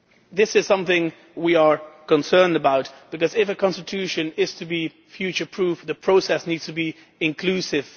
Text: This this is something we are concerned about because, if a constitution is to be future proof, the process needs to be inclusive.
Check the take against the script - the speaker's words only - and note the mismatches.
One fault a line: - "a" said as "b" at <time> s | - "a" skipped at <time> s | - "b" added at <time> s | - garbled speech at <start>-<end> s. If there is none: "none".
- "this" skipped at 0.6 s